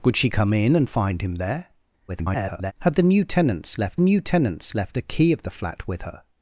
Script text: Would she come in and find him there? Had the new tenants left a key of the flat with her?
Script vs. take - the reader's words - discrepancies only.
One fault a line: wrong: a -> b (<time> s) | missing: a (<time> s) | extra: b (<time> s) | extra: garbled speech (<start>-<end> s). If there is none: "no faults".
extra: garbled speech (2.1-2.7 s)
extra: new tenants left (4.0 s)